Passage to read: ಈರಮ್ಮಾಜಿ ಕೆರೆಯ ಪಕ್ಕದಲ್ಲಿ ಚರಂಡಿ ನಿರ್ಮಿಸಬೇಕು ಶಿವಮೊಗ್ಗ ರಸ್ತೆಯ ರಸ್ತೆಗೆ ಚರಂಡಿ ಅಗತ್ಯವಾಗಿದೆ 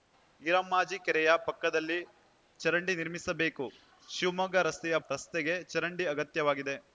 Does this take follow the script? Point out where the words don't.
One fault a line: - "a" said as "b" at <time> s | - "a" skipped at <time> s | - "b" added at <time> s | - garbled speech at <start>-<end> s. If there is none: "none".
none